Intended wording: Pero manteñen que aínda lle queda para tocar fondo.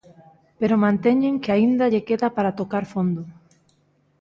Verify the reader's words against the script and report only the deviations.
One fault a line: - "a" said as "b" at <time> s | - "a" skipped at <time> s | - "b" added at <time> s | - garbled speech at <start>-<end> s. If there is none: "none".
none